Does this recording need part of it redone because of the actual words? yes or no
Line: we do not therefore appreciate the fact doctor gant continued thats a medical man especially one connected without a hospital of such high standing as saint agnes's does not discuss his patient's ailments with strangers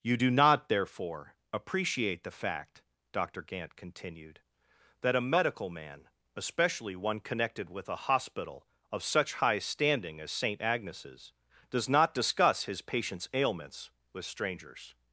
yes